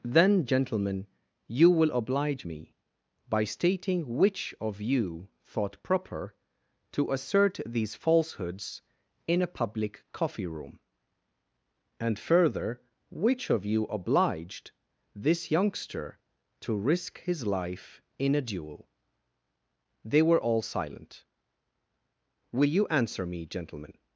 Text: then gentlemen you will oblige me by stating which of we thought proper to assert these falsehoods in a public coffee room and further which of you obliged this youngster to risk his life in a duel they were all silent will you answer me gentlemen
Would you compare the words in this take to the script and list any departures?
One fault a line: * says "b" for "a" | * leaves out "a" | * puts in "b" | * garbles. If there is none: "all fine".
* says "you" for "we"